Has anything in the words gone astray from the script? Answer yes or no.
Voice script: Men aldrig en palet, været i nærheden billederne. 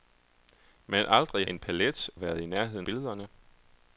no